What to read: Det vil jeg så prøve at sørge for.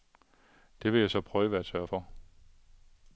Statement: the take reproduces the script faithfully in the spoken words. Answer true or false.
true